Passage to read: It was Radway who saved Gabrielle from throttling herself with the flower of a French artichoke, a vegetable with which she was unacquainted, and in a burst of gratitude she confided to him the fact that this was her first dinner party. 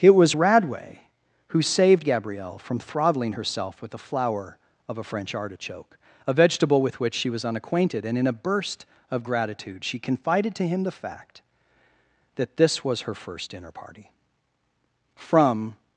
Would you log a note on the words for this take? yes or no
yes